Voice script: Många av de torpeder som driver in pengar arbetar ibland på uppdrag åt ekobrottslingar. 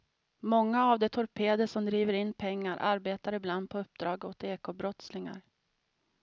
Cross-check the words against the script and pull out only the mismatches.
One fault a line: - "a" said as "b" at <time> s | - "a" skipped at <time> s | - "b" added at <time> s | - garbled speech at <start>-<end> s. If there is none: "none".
none